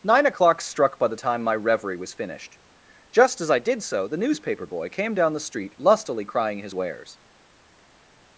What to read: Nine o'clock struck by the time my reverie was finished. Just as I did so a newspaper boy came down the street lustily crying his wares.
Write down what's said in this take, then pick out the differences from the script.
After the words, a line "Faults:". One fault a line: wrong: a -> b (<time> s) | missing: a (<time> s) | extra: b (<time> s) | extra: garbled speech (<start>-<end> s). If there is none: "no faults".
Nine o'clock struck by the time my reverie was finished. Just as I did so the newspaper boy came down the street lustily crying his wares.
Faults:
wrong: a -> the (4.1 s)